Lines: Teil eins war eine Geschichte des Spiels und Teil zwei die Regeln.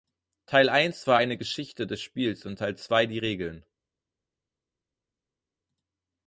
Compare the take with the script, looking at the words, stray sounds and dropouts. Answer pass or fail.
pass